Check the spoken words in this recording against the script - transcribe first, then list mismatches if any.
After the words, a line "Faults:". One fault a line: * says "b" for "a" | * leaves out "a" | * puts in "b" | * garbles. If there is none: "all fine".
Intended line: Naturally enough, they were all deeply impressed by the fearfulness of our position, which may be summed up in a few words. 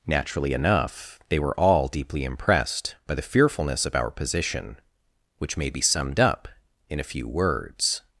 Naturally enough, they were all deeply impressed by the fearfulness of our position, which may be summed up in a few words.
Faults:
all fine